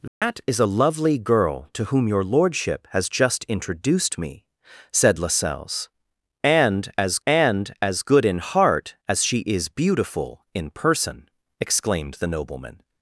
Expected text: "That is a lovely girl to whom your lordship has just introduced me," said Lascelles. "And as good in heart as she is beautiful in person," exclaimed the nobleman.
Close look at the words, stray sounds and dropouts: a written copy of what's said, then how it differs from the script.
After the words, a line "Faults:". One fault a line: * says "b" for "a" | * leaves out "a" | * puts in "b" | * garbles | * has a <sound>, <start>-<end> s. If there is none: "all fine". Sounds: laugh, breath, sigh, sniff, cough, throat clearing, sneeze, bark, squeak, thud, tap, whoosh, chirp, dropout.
"That is a lovely girl to whom your lordship has just introduced me," said Lascelles. "And as and as good in heart as she is beautiful in person," exclaimed the nobleman.
Faults:
* has a dropout, 0.1-0.2 s
* puts in "and as"